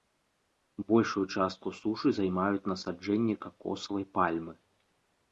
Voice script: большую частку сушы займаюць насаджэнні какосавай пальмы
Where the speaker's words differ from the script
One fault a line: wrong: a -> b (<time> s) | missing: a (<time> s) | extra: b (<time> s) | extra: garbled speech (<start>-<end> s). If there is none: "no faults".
no faults